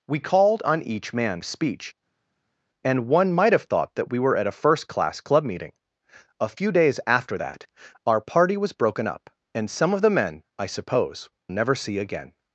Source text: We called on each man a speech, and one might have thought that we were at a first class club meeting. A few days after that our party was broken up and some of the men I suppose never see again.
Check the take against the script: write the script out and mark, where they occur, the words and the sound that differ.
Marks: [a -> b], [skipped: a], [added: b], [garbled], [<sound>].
We called on each man a speech, and one might have thought that we were at a first class club meeting. A few days after that our party was broken up and some of the men I suppose never see again.